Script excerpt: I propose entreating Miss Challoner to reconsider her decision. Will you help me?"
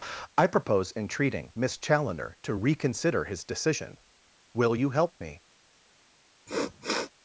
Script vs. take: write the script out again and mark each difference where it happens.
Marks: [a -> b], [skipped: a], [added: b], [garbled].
I propose entreating Miss Challoner to reconsider [her -> his] decision. Will you help me?"